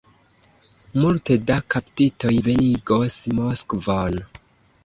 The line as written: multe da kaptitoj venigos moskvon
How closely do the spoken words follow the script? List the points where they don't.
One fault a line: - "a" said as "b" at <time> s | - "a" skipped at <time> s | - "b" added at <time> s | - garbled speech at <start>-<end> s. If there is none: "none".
none